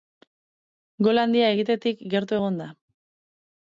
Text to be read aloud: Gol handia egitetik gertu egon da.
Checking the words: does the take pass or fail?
pass